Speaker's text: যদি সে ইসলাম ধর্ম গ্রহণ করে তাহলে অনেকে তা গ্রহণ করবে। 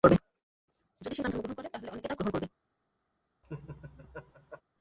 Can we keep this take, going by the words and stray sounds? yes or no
no